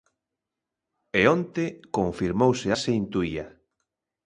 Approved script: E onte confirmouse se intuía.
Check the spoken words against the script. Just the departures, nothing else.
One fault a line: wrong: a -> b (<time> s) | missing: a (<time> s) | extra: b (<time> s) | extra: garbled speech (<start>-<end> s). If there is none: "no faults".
no faults